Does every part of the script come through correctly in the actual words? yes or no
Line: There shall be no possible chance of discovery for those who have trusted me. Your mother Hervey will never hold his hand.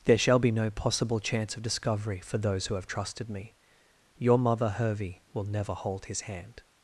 yes